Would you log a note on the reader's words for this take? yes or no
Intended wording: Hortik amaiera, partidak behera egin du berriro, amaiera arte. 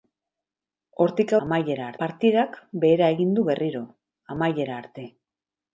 no